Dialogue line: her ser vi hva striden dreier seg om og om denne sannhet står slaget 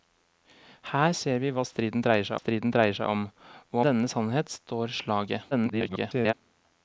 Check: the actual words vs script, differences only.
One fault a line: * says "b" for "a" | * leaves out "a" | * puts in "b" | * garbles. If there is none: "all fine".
* puts in "striden dreier seg"
* leaves out "om"
* garbles